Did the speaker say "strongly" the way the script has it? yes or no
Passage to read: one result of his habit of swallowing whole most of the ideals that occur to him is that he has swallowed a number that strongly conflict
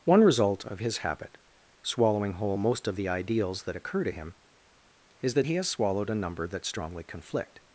yes